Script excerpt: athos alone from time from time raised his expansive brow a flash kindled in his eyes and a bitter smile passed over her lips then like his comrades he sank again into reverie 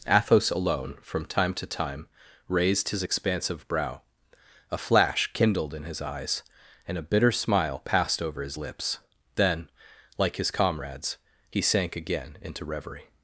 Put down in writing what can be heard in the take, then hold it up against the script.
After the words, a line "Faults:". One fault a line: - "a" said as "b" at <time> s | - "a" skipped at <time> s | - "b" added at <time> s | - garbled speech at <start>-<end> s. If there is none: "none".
athos alone from time to time raised his expansive brow a flash kindled in his eyes and a bitter smile passed over his lips then like his comrades he sank again into reverie
Faults:
- "from" said as "to" at 1.5 s
- "her" said as "his" at 8.4 s